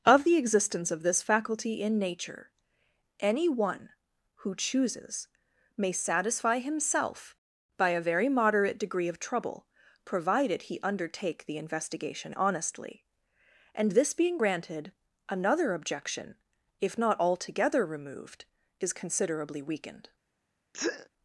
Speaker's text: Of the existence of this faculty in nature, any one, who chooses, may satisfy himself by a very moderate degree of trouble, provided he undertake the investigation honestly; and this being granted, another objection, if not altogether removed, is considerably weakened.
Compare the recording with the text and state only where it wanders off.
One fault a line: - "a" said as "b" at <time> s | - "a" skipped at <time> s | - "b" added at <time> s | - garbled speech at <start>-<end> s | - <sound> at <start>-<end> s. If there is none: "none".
- sneeze at 20.7-21.1 s